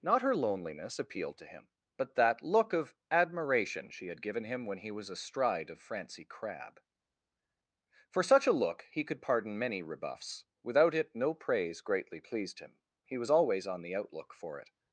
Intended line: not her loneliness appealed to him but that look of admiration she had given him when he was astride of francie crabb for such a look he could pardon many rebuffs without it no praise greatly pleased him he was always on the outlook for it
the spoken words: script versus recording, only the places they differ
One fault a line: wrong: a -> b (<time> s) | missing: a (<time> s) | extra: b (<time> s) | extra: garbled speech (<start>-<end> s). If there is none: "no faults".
no faults